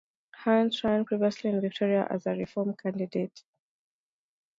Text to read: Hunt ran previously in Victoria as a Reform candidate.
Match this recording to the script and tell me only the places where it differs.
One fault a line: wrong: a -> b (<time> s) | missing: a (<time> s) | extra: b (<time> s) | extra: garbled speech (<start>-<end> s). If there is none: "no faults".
no faults